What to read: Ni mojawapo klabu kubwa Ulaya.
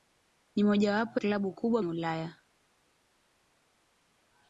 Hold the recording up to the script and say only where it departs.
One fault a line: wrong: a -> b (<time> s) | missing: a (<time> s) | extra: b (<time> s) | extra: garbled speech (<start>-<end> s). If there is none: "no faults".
no faults